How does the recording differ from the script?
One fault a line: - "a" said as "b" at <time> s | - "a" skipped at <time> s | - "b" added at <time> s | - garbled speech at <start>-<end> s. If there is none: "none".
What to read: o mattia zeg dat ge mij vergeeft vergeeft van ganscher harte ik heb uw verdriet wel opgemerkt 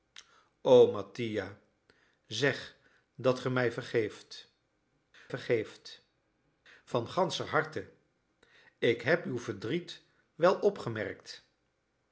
none